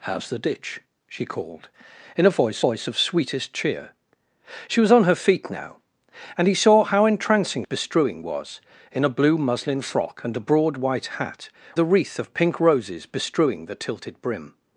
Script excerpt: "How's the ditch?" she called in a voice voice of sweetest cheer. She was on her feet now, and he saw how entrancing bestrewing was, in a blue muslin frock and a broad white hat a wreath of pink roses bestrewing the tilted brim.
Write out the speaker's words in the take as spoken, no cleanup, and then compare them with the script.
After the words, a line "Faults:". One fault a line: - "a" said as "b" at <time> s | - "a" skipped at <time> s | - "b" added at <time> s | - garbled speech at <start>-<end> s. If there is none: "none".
"How's the ditch?" she called in a voice voice of sweetest cheer. She was on her feet now, and he saw how entrancing bestrewing was, in a blue muslin frock and a broad white hat a wreath of pink roses bestrewing the tilted brim.
Faults:
none